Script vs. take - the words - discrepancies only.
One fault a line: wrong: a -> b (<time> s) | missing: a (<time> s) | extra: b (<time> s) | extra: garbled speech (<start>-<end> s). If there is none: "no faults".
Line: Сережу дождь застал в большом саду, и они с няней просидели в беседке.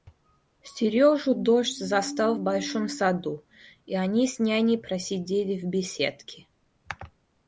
no faults